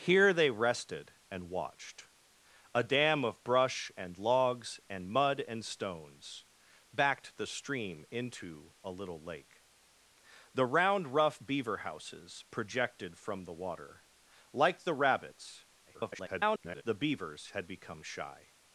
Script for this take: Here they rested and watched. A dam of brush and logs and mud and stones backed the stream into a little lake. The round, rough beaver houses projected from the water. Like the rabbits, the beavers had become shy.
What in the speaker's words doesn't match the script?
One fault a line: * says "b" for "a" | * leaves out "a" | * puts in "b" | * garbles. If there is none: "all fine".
* garbles